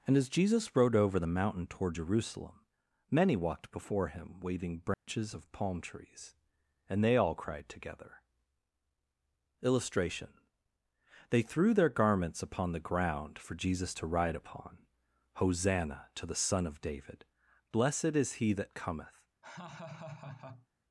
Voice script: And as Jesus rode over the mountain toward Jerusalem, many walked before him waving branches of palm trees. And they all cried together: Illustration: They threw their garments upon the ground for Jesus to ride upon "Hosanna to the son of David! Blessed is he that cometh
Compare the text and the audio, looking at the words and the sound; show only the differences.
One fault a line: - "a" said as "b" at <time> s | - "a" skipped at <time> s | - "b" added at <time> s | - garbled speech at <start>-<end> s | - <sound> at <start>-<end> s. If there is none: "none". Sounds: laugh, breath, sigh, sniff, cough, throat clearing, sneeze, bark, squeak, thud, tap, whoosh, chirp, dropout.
- dropout at 4.9-5.1 s
- laugh at 19.4-20.7 s